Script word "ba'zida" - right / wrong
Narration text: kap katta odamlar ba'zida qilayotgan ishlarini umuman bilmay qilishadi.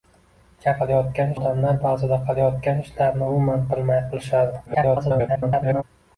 right